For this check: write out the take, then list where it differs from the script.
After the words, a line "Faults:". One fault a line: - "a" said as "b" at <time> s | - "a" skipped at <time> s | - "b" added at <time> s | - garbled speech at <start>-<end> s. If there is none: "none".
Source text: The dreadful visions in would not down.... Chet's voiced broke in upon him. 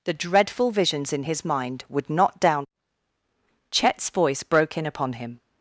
The dreadful visions in his mind would not down.... Chet's voice broke in upon him.
Faults:
- "his mind" added at 1.2 s
- "voiced" said as "voice" at 4.1 s